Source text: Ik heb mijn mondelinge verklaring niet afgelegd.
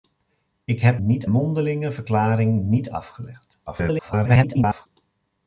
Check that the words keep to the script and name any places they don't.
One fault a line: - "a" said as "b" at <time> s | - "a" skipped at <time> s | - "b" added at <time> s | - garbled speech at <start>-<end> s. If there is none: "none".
- "mijn" said as "niet" at 1.0 s
- garbled speech at 3.7-4.9 s